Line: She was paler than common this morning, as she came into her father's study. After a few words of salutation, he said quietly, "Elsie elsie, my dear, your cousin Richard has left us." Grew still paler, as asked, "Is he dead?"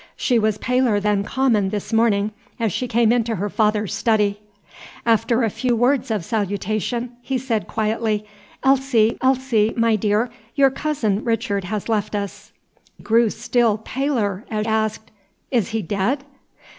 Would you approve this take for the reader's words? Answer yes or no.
yes